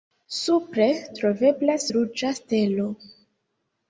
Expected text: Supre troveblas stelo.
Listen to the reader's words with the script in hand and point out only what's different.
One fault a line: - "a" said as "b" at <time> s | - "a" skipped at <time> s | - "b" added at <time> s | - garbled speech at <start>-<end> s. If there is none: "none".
- "ruĝa" added at 1.9 s